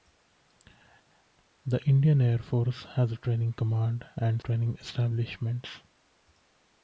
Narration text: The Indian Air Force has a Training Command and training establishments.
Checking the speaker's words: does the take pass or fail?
pass